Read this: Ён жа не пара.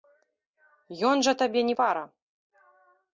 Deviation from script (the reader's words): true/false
true